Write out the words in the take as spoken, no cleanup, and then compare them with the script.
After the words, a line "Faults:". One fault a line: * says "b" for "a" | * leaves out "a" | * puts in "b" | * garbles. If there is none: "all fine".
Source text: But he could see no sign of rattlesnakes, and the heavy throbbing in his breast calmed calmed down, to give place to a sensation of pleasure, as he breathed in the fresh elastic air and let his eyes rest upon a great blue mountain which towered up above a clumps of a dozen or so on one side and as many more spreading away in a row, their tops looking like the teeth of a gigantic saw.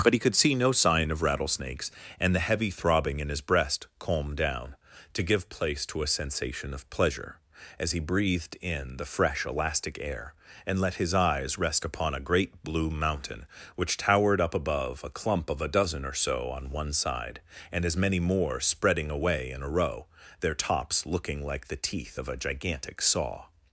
But he could see no sign of rattlesnakes, and the heavy throbbing in his breast calmed down, to give place to a sensation of pleasure, as he breathed in the fresh elastic air and let his eyes rest upon a great blue mountain which towered up above a clump of a dozen or so on one side and as many more spreading away in a row, their tops looking like the teeth of a gigantic saw.
Faults:
* leaves out "calmed"
* says "clump" for "clumps"